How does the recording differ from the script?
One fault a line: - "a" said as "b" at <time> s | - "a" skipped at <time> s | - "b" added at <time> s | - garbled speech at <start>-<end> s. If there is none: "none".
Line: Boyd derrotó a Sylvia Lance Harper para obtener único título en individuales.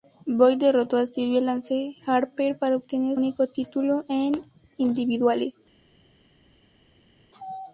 none